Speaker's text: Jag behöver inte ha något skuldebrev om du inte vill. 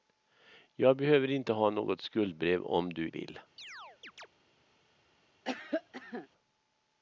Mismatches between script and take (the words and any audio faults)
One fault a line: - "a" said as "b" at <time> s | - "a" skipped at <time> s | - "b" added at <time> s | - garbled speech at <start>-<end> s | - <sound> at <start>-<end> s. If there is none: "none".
- "inte" skipped at 3.1 s
- chirp at 3.6-4.3 s
- cough at 5.4-6.3 s